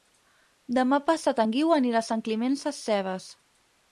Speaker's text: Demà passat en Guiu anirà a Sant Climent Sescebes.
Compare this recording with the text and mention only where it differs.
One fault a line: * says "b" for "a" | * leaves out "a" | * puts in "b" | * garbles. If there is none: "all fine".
all fine